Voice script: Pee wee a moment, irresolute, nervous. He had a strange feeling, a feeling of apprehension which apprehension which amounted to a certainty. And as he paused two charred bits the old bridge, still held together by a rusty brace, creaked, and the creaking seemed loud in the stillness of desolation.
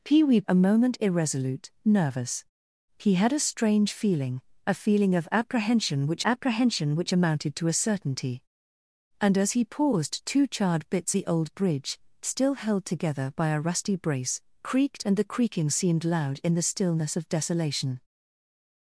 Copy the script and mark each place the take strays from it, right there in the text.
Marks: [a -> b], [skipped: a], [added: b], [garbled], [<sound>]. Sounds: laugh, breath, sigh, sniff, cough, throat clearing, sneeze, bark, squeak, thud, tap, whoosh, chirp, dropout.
Pee wee a moment, irresolute, nervous. He had a strange feeling, a feeling of apprehension which apprehension which amounted to a certainty. And as he paused two charred bits the old bridge, still held together by a rusty brace, creaked, and the creaking seemed loud in the stillness of desolation.